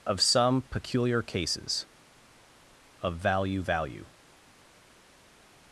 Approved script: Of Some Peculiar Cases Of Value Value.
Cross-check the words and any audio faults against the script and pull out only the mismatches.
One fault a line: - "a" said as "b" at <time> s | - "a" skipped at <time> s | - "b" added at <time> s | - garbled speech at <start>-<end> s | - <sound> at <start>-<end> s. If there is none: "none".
none